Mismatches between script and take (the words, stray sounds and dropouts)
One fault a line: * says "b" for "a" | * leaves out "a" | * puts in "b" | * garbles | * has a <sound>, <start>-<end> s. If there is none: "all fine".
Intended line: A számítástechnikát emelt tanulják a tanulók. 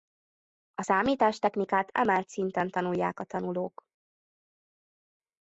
* puts in "szinten"